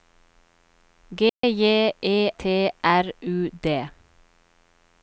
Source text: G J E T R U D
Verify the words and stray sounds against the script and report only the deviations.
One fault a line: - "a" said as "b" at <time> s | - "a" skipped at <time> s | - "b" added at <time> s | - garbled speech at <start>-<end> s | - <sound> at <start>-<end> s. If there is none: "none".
- dropout at 1.3-1.4 s